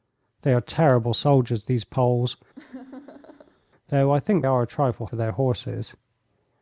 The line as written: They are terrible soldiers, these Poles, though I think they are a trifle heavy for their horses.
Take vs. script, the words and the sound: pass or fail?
fail